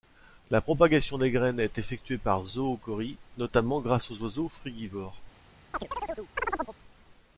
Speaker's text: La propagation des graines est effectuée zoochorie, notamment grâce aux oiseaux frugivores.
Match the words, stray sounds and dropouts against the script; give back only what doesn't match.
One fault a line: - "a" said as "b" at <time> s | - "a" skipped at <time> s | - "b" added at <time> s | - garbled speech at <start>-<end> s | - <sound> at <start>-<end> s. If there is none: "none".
- "par" added at 2.2 s
- chirp at 5.7-6.8 s